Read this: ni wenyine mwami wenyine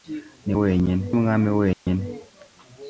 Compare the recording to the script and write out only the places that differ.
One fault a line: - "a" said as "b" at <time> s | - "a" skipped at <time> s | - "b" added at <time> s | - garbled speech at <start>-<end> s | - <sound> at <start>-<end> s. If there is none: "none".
- dropout at 1.7-1.9 s